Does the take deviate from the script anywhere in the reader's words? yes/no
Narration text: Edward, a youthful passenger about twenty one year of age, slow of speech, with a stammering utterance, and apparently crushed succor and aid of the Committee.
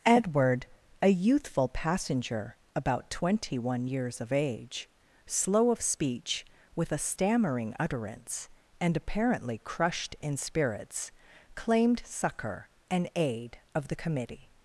yes